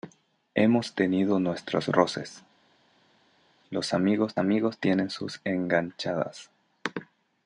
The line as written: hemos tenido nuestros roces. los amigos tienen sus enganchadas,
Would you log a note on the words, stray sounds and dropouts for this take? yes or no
yes